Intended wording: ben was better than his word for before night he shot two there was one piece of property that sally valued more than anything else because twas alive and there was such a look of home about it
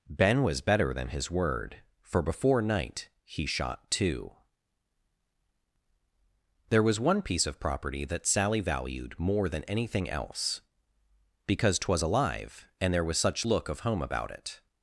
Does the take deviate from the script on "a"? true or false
true